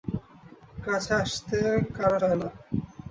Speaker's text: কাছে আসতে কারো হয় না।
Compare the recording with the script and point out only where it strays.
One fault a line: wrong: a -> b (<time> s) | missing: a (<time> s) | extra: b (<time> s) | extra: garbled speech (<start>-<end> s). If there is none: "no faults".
no faults